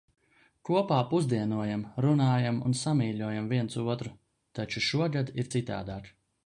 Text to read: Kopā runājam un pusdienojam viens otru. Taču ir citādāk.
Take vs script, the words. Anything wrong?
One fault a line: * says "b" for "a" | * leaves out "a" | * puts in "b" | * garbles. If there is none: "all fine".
* puts in "pusdienojam"
* says "samīļojam" for "pusdienojam"
* puts in "šogad"